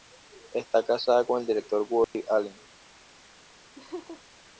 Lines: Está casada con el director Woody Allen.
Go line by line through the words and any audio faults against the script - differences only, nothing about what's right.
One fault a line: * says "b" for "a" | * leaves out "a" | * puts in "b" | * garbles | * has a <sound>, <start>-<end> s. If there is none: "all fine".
* has a dropout, 2.0-2.1 s
* has a laugh, 3.8-4.2 s